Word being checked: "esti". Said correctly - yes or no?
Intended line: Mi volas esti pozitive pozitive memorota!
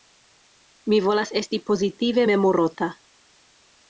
yes